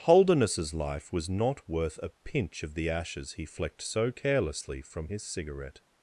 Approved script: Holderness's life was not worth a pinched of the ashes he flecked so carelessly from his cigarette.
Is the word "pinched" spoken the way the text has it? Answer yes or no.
no